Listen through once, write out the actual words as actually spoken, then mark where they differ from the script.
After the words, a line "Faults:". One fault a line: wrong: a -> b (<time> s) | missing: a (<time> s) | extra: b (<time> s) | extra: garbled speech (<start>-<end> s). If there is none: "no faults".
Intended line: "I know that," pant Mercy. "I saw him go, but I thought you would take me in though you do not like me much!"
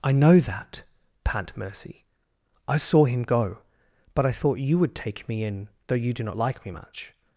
"I know that," pant Mercy. "I saw him go, but I thought you would take me in though you do not like me much!"
Faults:
no faults